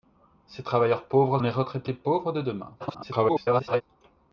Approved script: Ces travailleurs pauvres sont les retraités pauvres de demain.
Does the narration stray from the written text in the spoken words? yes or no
yes